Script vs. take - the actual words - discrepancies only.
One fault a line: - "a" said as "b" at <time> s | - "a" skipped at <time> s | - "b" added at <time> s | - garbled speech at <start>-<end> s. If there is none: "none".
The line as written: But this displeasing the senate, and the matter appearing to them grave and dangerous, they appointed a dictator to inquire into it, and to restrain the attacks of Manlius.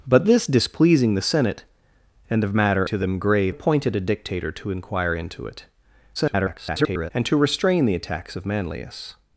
- "appearing" skipped at 2.9 s
- "and dangerous they" skipped at 3.6 s
- garbled speech at 6.1-7.1 s